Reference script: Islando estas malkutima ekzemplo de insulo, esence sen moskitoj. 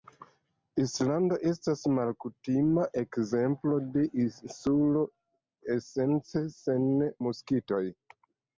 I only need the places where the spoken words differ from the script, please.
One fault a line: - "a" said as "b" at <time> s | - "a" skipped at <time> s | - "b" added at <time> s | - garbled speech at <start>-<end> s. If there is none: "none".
none